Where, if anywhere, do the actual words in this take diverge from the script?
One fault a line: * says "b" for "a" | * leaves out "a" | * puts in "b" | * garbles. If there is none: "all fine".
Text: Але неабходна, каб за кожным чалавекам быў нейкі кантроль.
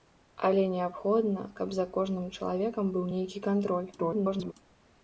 * garbles